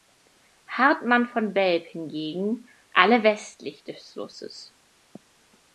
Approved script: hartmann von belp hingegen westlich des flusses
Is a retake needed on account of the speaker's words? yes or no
yes